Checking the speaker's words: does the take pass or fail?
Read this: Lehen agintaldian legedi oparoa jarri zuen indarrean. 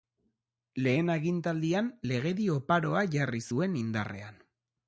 pass